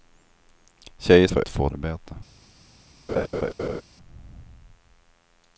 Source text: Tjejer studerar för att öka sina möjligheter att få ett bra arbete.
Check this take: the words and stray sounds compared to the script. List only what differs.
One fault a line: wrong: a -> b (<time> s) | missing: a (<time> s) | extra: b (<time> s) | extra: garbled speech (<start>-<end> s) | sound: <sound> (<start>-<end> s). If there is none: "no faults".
missing: studerar (1.3 s)
missing: öka sina möjligheter (1.4 s)
missing: ett bra (1.7 s)
sound: laugh (3.1-3.8 s)